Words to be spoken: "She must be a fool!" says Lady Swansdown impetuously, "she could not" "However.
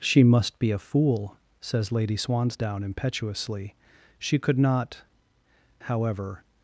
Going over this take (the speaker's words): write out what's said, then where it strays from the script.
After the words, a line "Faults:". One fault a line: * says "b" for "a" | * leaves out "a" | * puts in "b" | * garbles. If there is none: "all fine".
"She must be a fool!" says Lady Swansdown impetuously, "she could not" "However.
Faults:
all fine